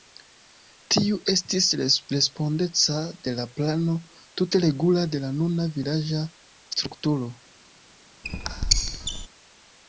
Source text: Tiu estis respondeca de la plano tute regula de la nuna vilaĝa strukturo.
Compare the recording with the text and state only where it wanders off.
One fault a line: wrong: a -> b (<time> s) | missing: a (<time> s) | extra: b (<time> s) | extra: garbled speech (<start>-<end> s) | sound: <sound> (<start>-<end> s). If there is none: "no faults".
sound: squeak (8.2-9.3 s)